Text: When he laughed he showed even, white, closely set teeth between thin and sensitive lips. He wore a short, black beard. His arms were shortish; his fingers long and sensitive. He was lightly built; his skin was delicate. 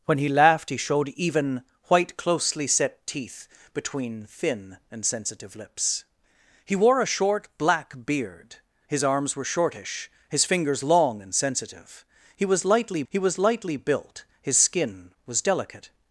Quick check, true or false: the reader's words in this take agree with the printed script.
false